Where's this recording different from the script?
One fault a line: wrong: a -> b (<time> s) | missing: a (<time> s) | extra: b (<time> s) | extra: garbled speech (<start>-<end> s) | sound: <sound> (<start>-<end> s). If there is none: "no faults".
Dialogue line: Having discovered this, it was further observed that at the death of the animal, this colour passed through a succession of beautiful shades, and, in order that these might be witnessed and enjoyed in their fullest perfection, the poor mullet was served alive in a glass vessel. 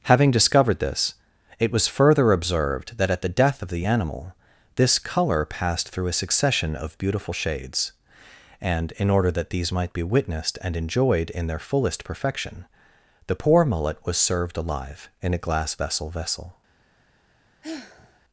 extra: vessel (16.1 s)
sound: sigh (17.6-18.2 s)